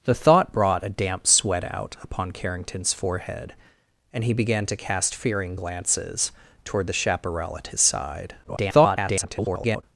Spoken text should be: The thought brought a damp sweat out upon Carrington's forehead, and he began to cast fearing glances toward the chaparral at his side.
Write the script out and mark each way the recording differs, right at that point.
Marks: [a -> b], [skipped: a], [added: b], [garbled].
The thought brought a damp sweat out upon Carrington's forehead, and he began to cast fearing glances toward the chaparral at his side. [garbled]